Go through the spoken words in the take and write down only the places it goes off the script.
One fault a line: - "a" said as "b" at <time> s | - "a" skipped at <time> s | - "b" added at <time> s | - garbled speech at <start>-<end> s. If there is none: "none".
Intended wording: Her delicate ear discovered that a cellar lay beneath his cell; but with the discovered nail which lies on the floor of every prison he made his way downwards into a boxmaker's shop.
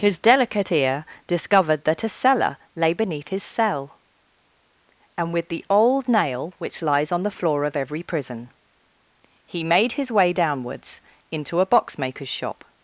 - "Her" said as "His" at 0.0 s
- "but" said as "and" at 5.2 s
- "discovered" said as "old" at 5.7 s